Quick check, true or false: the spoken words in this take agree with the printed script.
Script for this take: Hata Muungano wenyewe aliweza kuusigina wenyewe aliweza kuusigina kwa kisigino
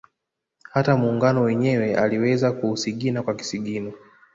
false